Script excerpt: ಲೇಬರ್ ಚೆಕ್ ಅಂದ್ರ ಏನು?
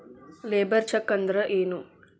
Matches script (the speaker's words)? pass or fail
pass